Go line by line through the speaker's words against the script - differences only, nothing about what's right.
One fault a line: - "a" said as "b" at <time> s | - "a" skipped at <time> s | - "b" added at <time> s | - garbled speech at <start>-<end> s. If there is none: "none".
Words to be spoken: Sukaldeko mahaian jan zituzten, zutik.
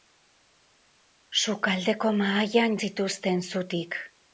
- "jan" skipped at 2.8 s